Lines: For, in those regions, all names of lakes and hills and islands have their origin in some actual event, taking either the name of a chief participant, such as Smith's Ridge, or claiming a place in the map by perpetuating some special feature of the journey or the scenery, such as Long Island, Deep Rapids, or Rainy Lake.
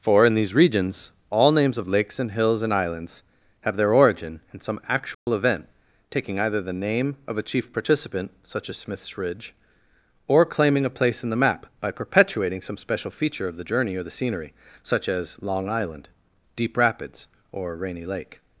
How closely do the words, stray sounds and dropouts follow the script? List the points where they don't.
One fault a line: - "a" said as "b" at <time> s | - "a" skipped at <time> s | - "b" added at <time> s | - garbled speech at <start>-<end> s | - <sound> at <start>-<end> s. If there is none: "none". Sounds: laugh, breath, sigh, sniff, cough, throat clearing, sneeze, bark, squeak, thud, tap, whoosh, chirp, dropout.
- "those" said as "these" at 0.3 s
- dropout at 5.1-5.3 s